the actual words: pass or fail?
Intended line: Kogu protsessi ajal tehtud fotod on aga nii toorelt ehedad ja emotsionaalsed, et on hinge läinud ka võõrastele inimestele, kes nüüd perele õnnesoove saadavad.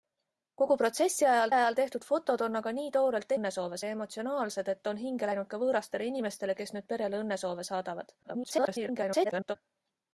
fail